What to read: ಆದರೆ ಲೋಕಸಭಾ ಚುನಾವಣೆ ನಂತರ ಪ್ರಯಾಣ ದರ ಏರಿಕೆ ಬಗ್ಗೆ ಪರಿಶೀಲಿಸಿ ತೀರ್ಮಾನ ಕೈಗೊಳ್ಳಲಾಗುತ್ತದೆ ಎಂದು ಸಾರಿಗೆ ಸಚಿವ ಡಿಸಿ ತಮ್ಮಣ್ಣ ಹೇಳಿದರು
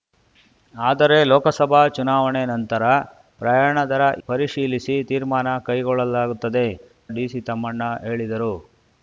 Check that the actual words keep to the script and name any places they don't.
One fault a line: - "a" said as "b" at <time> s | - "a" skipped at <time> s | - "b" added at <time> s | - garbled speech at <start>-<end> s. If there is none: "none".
- "ಏರಿಕೆ ಬಗ್ಗೆ" skipped at 4.0 s
- "ಎಂದು ಸಾರಿಗೆ ಸಚಿವ" skipped at 6.7 s